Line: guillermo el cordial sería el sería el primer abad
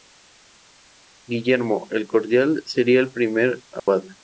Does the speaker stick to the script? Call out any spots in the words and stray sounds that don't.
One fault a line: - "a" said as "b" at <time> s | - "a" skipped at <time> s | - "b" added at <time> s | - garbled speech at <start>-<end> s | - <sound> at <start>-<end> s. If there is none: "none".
- "sería el" skipped at 3.1 s
- dropout at 3.8-3.9 s